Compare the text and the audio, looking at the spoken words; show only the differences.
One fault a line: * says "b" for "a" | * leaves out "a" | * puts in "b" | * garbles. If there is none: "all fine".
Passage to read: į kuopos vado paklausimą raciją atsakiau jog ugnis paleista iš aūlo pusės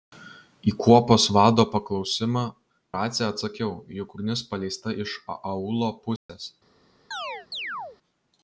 all fine